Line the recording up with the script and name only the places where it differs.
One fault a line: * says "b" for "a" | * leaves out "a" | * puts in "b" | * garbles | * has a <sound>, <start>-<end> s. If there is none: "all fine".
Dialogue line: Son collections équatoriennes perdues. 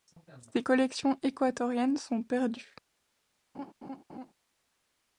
* says "Ses" for "Son"
* puts in "sont"
* has a laugh, 3.5-4.3 s